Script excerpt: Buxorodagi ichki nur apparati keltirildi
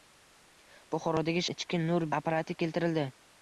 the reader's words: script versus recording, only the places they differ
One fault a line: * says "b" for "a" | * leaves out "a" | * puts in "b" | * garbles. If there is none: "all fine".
all fine